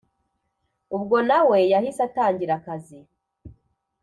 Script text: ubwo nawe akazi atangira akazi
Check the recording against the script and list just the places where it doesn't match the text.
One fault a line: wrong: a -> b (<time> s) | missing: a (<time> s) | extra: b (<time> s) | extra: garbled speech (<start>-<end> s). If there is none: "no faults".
wrong: akazi -> yahise (1.7 s)